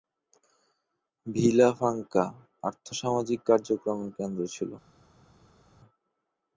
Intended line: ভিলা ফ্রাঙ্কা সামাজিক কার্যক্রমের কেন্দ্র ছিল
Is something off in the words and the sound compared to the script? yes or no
yes